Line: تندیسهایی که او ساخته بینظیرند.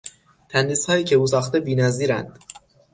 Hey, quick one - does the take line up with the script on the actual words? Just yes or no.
yes